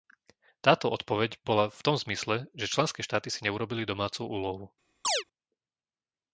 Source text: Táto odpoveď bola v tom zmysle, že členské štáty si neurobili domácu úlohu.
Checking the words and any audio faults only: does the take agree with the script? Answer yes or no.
no